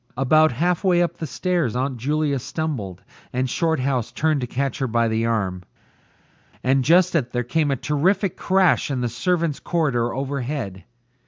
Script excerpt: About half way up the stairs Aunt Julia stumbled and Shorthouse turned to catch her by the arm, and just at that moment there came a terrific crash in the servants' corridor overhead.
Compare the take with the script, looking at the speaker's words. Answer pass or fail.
fail